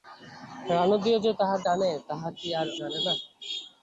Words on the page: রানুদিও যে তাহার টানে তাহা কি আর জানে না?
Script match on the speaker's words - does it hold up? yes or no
yes